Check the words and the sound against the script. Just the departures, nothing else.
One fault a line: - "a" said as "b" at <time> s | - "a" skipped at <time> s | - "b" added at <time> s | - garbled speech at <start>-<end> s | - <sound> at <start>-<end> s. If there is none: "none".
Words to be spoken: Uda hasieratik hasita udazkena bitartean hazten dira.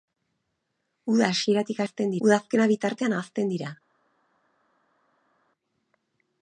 - "hasita" said as "hazten" at 1.8 s